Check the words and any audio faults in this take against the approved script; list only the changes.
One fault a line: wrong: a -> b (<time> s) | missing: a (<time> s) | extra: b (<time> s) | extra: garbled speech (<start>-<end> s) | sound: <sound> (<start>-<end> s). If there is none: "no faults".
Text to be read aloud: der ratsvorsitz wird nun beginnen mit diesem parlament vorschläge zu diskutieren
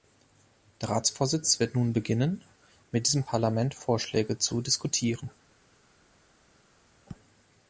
no faults